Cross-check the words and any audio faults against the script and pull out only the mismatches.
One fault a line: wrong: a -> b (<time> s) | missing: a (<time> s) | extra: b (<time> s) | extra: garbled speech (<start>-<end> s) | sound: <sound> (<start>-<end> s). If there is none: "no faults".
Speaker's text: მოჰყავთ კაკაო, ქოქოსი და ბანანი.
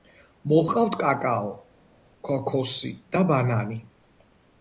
no faults